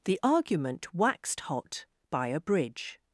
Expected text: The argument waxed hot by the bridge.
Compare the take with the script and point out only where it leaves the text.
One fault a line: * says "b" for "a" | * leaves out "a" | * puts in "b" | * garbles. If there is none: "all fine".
* says "a" for "the"